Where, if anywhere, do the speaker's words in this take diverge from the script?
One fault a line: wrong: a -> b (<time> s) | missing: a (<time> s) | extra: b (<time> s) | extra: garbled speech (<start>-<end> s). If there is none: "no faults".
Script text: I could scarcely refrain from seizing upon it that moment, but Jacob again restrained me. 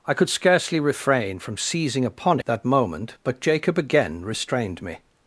missing: it (2.4 s)